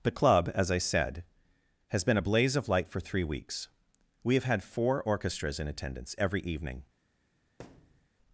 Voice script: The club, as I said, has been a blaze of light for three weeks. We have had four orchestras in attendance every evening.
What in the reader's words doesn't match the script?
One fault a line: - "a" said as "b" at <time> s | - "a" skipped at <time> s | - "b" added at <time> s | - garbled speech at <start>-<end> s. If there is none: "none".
none